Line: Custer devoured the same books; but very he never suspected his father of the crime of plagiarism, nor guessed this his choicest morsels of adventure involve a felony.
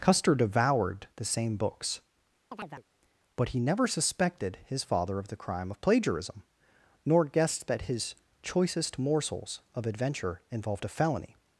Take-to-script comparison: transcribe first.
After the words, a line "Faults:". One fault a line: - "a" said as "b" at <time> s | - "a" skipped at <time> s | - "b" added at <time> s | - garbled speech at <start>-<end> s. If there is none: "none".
Custer devoured the same books; but he never suspected his father of the crime of plagiarism, nor guessed that his choicest morsels of adventure involved a felony.
Faults:
- "very" skipped at 3.5 s
- "this" said as "that" at 7.7 s
- "involve" said as "involved" at 10.5 s